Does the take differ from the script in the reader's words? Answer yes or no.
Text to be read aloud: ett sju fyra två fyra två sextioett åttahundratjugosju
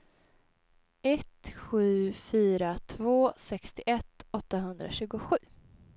yes